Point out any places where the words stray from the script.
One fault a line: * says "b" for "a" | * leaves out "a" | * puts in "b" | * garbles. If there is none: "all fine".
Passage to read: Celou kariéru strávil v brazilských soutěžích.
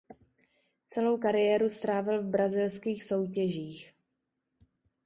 all fine